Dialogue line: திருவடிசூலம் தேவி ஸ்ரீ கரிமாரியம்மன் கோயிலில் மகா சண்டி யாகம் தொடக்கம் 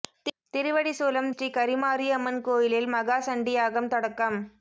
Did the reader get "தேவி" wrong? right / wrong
wrong